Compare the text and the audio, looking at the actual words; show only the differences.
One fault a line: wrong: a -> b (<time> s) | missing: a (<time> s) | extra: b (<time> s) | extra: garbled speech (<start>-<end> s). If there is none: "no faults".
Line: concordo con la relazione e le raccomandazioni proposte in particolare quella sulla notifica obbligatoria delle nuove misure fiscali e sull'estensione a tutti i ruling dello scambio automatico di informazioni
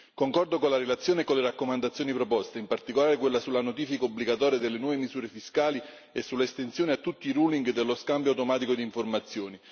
extra: con (1.2 s)